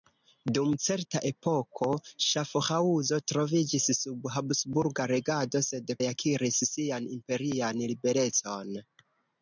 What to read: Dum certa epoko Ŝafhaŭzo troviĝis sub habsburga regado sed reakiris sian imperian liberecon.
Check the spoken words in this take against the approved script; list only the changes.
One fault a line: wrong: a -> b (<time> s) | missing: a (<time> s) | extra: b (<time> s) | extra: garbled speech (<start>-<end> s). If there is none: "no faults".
no faults